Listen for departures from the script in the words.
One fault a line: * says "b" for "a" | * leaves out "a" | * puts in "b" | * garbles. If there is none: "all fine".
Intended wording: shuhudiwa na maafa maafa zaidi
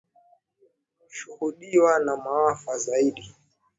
* leaves out "maafa"